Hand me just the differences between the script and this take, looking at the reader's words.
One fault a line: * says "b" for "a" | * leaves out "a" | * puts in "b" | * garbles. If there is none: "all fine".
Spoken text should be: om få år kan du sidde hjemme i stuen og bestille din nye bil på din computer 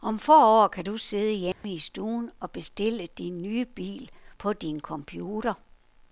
all fine